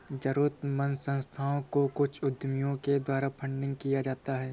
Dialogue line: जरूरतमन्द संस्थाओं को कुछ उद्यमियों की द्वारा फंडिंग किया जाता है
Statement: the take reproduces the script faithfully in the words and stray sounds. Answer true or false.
false